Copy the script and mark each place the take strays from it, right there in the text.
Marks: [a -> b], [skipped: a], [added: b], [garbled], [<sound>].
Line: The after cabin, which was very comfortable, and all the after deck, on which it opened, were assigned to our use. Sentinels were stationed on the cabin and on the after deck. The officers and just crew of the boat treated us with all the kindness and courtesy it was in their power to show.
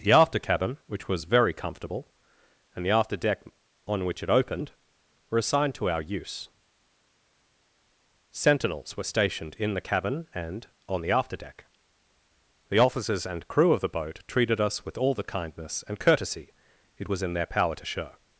The after cabin, which was very comfortable, and [skipped: all] the after deck, on which it opened, were assigned to our use. Sentinels were stationed [on -> in] the cabin and on the after deck. The officers and [skipped: just] crew of the boat treated us with all the kindness and courtesy it was in their power to show.